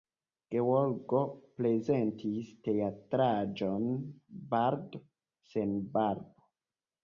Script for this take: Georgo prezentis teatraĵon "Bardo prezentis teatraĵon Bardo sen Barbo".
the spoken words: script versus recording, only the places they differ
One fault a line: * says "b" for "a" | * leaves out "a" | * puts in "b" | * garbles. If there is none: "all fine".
* leaves out "prezentis teatraĵon Bardo"